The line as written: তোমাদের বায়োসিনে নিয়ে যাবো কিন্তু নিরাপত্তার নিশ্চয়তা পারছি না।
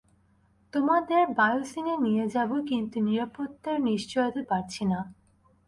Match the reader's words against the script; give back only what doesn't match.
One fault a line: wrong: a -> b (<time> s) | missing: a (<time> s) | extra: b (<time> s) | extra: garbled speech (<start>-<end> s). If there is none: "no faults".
no faults